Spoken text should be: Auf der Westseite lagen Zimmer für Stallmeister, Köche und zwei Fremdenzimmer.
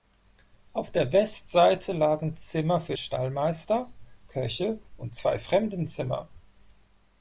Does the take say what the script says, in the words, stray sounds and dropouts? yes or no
yes